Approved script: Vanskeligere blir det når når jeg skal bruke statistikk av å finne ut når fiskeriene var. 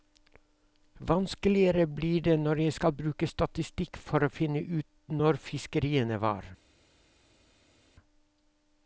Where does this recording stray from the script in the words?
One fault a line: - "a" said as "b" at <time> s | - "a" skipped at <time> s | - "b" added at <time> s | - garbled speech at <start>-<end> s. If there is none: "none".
- "når" skipped at 2.6 s
- "av" said as "for" at 4.1 s